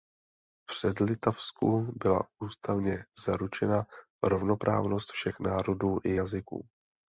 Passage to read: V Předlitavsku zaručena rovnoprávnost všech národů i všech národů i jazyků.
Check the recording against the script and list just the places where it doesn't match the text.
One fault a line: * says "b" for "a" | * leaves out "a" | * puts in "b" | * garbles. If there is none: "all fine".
* puts in "byla ústavně"
* leaves out "všech národů i"